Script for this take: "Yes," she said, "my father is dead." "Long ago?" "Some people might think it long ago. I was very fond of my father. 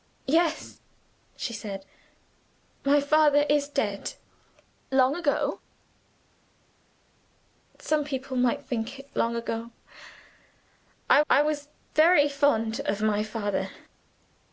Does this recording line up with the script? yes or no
no